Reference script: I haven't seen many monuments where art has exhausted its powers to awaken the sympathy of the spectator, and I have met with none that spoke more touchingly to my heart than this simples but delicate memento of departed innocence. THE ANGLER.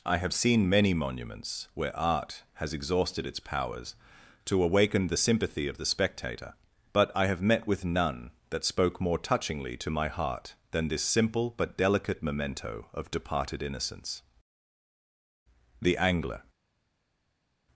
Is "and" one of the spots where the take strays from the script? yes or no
yes